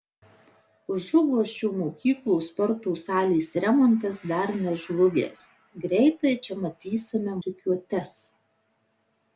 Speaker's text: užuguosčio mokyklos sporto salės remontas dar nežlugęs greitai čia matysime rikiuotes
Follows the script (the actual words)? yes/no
yes